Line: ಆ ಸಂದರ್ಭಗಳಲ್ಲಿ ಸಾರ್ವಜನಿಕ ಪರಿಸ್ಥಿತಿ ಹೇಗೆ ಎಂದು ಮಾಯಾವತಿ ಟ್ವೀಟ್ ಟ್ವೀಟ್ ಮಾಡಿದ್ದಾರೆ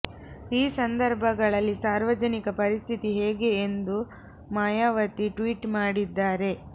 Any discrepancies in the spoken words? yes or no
yes